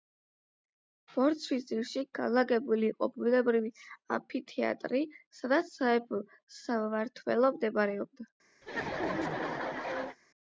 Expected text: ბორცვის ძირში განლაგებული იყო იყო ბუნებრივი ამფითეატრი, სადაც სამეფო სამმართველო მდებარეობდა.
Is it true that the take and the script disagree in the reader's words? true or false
true